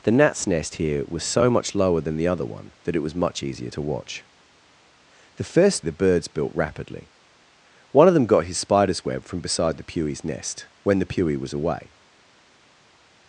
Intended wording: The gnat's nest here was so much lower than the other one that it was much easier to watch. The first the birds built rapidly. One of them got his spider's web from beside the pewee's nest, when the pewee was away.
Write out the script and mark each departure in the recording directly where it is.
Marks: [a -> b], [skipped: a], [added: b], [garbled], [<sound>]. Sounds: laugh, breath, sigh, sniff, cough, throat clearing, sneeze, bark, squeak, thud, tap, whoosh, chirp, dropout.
The gnat's nest here was so much lower than the other one that it was much easier to watch. The first the birds built rapidly. One of them got his spider's web from beside the pewee's nest, when the pewee was away.